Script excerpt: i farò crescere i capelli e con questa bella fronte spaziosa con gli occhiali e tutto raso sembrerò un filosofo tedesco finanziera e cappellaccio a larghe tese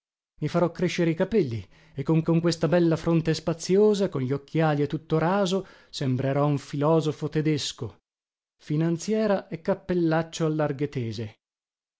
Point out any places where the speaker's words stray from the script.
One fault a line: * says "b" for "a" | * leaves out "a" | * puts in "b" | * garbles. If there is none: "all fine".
* puts in "con"